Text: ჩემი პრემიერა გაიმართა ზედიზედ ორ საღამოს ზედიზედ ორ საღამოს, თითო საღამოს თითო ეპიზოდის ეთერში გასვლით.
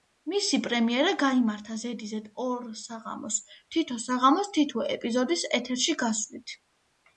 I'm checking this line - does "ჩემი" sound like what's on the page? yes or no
no